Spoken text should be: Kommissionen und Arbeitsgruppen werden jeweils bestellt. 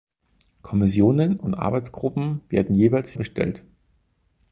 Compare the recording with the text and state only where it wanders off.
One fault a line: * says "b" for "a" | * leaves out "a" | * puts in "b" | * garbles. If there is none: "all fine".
all fine